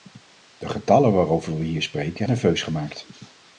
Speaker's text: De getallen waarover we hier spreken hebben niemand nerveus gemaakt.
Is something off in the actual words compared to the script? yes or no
yes